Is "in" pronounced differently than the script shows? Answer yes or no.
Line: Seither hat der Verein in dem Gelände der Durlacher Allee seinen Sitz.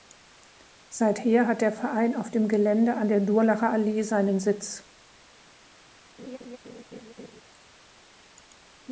yes